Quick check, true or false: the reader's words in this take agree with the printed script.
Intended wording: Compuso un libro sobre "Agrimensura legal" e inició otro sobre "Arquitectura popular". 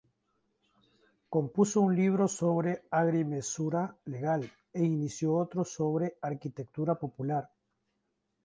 true